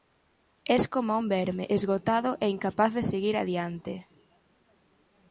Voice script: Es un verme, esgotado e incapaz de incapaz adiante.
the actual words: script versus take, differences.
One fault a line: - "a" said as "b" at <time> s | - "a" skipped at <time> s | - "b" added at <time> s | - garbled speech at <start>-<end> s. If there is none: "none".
- "coma" added at 0.9 s
- "incapaz" said as "seguir" at 3.0 s